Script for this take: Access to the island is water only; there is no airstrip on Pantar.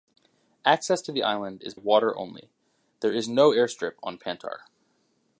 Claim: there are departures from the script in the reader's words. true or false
false